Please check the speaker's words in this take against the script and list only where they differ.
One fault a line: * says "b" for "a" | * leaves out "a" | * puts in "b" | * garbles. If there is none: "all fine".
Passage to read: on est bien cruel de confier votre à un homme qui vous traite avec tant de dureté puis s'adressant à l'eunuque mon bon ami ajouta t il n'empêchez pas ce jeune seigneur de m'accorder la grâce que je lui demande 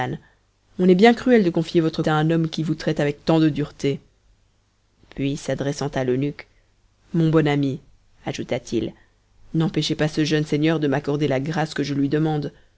all fine